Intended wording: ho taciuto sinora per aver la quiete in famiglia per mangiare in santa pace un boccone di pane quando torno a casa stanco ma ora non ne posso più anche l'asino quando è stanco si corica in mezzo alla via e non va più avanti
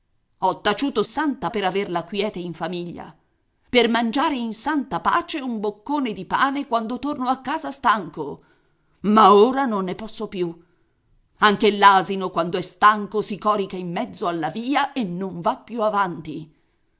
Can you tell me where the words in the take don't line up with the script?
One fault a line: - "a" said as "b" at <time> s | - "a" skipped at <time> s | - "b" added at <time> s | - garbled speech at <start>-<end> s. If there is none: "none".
- "sinora" said as "santa" at 1.0 s